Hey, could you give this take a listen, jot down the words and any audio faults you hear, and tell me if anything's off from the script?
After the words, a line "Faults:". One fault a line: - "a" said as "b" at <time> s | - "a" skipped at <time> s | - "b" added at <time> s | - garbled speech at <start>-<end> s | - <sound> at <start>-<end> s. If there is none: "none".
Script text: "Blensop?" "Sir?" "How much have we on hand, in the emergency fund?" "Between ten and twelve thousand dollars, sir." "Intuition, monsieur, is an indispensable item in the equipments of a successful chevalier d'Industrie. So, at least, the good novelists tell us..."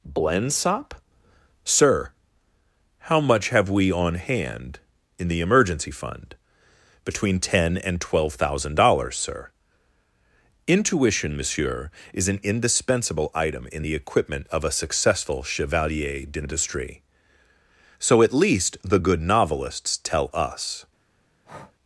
"Blensop?" "Sir?" "How much have we on hand, in the emergency fund?" "Between ten and twelve thousand dollars, sir." "Intuition, monsieur, is an indispensable item in the equipment of a successful chevalier d'Industrie. So, at least, the good novelists tell us..."
Faults:
- "equipments" said as "equipment" at 13.9 s
- breath at 21.4-21.8 s